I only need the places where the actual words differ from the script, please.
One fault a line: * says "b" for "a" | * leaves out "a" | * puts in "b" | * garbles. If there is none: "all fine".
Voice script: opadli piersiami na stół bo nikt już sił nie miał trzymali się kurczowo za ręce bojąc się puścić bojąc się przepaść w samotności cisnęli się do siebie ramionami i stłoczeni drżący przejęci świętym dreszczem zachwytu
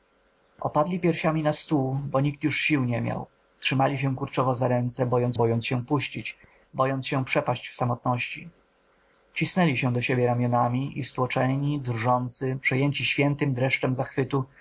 * puts in "bojąc"